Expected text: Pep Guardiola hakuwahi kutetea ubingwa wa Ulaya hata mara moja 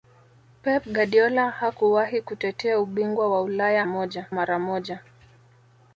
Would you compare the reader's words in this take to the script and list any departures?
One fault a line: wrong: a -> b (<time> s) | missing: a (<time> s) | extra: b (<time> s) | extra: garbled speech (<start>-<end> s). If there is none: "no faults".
wrong: hata -> moja (3.8 s)